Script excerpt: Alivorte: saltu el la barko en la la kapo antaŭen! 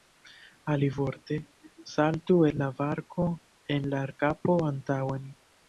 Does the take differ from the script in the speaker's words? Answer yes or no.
no